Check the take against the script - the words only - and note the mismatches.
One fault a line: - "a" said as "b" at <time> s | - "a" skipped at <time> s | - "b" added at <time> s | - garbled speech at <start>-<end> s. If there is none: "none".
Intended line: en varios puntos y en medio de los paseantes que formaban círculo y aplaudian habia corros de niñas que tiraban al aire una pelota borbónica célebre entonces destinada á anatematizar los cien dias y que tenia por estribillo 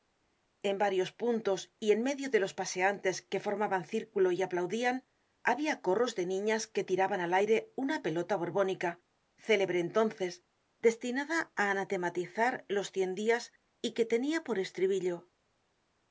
none